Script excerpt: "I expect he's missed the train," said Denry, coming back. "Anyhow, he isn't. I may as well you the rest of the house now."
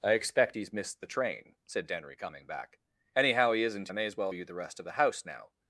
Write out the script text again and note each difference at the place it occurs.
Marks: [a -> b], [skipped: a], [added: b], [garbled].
"I expect he's missed the train," said Denry, coming back. "Anyhow, he isn't. I may as well you the rest of the house now."